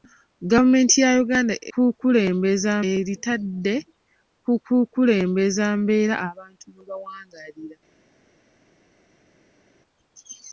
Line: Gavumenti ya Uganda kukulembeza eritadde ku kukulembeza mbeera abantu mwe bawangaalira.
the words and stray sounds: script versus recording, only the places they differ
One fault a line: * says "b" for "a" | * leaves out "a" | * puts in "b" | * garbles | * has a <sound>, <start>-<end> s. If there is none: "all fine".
all fine